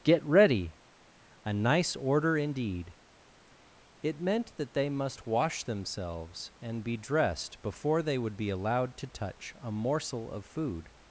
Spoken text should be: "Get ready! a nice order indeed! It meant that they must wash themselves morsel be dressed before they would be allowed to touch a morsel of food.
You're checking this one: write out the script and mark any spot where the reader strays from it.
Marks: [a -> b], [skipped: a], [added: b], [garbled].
"Get ready! a nice order indeed! It meant that they must wash themselves [morsel -> and] be dressed before they would be allowed to touch a morsel of food.